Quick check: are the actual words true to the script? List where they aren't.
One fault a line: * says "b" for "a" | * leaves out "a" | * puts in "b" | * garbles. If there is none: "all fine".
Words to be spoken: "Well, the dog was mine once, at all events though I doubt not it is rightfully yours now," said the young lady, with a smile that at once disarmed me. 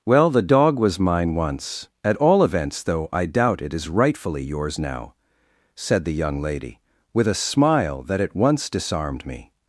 * leaves out "not"